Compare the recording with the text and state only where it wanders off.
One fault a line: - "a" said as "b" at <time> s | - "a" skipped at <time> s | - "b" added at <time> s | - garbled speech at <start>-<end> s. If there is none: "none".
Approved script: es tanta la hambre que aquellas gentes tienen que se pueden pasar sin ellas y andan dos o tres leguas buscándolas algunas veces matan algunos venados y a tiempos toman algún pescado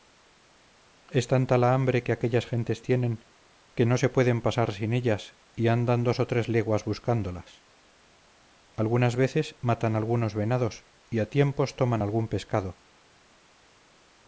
- "no" added at 3.9 s